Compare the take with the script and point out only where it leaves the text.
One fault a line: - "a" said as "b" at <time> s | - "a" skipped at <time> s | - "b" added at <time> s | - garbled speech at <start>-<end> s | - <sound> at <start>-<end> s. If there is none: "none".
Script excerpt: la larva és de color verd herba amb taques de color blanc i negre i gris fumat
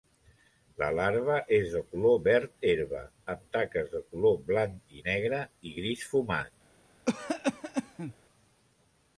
- cough at 7.1-8.1 s